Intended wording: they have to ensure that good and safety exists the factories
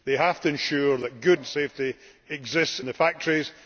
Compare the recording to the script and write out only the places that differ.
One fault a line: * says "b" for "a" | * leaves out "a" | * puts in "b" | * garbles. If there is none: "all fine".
all fine